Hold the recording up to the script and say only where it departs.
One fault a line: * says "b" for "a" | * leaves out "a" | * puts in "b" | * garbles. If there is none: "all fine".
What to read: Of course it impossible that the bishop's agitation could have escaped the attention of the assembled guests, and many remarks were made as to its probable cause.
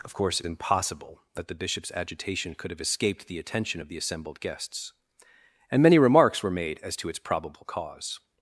all fine